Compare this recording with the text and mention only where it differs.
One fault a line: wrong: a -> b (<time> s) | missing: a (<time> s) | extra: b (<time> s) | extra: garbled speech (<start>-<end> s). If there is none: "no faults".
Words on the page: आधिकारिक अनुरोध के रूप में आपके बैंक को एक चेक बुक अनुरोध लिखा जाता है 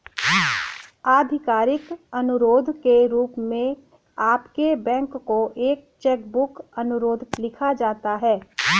no faults